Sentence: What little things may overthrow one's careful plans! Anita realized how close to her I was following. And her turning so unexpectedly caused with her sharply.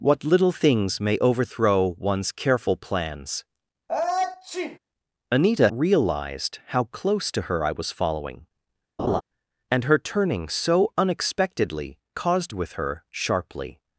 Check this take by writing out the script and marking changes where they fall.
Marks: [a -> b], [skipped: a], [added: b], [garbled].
What little things may overthrow one's careful plans! Anita realized how close to her I was following. And her turning so unexpectedly caused with her sharply.